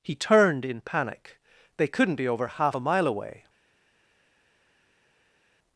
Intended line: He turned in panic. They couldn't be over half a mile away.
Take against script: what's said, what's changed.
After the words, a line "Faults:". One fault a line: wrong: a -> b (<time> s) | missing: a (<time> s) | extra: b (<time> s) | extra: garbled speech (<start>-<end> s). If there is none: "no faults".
He turned in panic. They couldn't be over half a mile away.
Faults:
no faults